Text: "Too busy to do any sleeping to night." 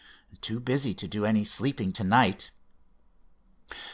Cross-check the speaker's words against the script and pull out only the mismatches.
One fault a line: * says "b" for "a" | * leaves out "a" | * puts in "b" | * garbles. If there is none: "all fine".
all fine